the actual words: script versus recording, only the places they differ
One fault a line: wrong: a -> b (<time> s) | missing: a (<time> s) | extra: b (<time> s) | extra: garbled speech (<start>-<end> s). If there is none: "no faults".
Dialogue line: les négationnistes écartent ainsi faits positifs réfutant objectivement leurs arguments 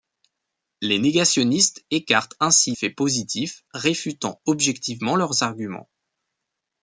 no faults